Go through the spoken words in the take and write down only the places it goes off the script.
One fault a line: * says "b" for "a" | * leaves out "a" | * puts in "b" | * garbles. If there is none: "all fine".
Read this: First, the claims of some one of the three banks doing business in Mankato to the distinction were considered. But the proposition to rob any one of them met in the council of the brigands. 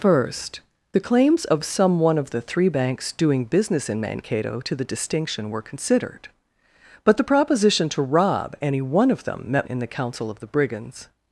all fine